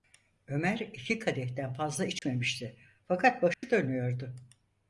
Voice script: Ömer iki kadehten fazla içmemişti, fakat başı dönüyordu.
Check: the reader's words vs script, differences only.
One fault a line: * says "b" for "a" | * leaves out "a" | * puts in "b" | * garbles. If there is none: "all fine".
all fine